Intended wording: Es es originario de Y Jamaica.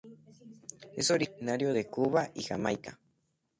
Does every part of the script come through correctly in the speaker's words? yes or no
no